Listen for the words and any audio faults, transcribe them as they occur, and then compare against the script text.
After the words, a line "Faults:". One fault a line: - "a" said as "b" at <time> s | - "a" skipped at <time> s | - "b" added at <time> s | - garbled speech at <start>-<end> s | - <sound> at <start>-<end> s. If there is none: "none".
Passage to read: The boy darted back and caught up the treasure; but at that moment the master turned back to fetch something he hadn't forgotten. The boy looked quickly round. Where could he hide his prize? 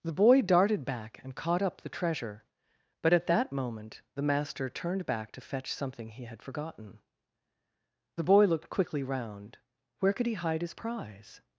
The boy darted back and caught up the treasure; but at that moment the master turned back to fetch something he had forgotten. The boy looked quickly round. Where could he hide his prize?
Faults:
- "hadn't" said as "had" at 6.2 s